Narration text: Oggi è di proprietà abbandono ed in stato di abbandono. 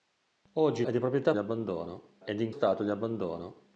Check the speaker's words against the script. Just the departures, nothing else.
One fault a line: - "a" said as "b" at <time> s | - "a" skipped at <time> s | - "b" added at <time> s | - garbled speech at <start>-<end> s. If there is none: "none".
none